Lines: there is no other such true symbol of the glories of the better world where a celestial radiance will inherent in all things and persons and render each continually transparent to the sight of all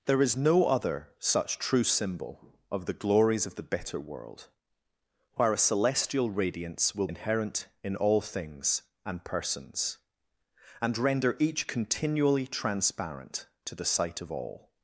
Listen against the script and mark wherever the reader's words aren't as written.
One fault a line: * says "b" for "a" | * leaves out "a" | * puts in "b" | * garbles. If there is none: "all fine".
all fine